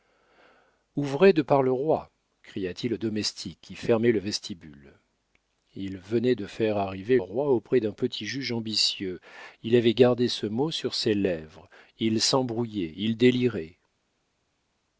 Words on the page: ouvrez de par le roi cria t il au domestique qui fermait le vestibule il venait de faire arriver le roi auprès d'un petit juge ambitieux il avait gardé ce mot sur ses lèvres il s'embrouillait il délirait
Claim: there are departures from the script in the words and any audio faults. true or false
true